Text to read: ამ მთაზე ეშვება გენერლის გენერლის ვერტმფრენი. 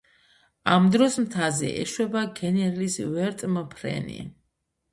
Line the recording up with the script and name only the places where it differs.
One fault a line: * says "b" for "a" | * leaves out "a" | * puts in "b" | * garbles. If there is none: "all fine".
* puts in "დროს"
* leaves out "გენერლის"